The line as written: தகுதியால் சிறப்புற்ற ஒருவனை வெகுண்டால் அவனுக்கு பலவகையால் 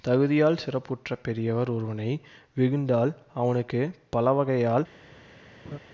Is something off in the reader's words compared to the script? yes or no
yes